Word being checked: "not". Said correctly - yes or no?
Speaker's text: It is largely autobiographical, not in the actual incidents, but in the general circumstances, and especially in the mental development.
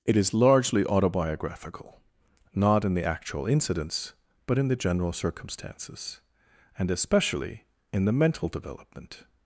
yes